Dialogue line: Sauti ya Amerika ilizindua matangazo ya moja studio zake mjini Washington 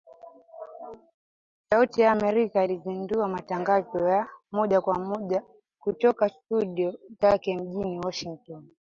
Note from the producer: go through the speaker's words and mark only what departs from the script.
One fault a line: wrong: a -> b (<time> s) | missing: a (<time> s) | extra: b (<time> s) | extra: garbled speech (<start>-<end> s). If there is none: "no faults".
extra: kwa moja kutoka (4.8 s)